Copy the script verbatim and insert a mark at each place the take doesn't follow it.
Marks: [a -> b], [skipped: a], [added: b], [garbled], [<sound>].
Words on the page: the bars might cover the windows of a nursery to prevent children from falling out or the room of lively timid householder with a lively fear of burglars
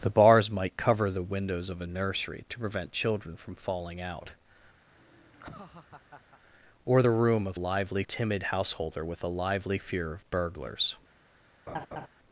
the bars might cover the windows of a nursery to prevent children from falling out [laugh] or the room of lively timid householder with a lively fear of burglars [laugh]